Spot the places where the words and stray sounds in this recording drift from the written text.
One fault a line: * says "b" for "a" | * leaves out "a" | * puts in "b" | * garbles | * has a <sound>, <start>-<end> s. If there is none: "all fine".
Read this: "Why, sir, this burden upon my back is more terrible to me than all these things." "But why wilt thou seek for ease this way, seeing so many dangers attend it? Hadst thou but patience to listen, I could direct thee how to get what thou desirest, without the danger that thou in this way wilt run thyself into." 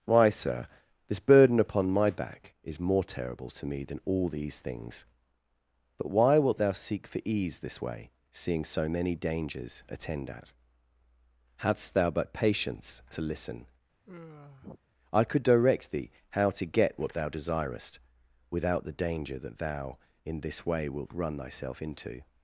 * says "at" for "it"
* has a sigh, 14.0-14.8 s